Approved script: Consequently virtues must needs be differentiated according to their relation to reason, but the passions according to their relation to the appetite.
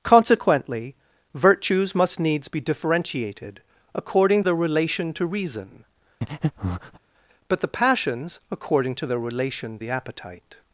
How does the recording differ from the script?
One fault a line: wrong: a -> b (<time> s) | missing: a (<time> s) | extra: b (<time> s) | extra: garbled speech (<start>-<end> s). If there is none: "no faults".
missing: to (4.4 s)
missing: to (9.8 s)